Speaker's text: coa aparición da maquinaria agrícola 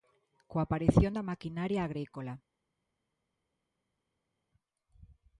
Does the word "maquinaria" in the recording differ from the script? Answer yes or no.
no